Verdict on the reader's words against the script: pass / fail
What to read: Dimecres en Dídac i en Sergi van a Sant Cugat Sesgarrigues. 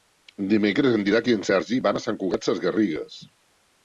pass